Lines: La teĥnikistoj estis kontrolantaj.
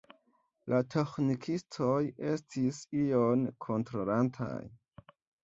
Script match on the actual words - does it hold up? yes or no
no